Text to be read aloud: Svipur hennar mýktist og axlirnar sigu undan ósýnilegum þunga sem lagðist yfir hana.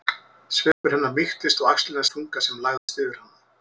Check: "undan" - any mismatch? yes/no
yes